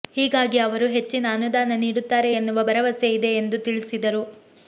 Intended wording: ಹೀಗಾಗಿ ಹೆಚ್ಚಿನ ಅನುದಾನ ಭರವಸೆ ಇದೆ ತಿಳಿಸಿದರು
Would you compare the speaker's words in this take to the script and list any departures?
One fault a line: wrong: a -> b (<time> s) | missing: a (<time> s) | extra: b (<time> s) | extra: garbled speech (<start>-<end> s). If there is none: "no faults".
extra: ಅವರು (0.6 s)
extra: ನೀಡುತ್ತಾರೆ ಎನ್ನುವ (1.8 s)
extra: ಎಂದು (3.3 s)